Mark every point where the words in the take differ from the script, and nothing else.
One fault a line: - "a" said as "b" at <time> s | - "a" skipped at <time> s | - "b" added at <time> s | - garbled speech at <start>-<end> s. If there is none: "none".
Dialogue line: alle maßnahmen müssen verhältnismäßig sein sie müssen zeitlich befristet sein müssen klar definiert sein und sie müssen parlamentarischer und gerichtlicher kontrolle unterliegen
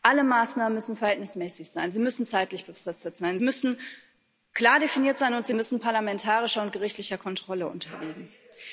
none